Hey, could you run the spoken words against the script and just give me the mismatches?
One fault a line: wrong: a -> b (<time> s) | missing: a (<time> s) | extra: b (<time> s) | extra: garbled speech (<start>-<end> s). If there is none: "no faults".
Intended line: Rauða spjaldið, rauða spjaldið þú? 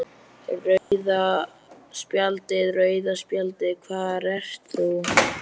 extra: hvar ert (3.9 s)